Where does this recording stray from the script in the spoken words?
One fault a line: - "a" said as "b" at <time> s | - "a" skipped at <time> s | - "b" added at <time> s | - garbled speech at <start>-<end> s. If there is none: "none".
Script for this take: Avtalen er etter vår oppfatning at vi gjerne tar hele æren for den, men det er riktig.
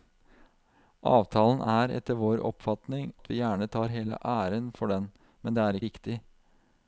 none